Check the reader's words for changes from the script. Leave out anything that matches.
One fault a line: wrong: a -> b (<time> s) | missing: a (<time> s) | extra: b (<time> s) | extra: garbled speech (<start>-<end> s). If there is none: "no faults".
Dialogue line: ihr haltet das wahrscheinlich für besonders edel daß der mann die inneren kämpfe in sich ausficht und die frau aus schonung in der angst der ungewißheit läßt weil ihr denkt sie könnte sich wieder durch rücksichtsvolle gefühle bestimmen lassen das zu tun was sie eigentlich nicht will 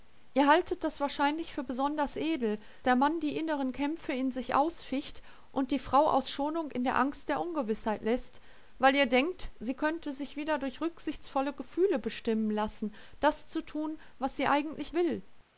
missing: daß (2.6 s)
missing: nicht (14.9 s)